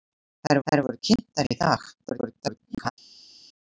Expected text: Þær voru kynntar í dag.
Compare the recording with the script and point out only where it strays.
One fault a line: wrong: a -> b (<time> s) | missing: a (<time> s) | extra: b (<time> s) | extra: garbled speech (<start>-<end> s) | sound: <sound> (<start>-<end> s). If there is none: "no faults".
extra: þær (0.7 s)
extra: garbled speech (2.0-2.9 s)